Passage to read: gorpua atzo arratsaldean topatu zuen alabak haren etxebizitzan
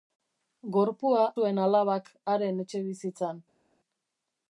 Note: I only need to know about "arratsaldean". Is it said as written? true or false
false